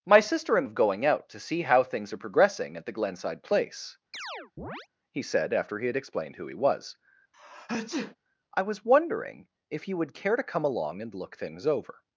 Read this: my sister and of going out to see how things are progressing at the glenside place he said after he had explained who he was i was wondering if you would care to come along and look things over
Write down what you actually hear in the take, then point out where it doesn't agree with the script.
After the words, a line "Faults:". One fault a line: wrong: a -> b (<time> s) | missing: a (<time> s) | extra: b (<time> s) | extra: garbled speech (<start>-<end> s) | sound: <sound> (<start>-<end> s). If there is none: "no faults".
my sister and of going out to see how things are progressing at the glenside place he said after he had explained who he was i was wondering if you would care to come along and look things over
Faults:
sound: chirp (4.1-4.9 s)
sound: sneeze (7.3-8.2 s)